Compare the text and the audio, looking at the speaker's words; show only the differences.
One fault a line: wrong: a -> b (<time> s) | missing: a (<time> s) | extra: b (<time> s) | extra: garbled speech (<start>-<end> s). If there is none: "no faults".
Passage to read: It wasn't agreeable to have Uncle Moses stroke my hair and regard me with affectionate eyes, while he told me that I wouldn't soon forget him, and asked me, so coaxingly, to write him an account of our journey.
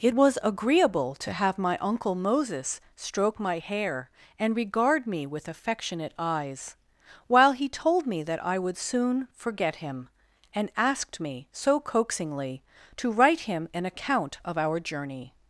wrong: wasn't -> was (0.1 s)
extra: my (1.6 s)
wrong: wouldn't -> would (8.6 s)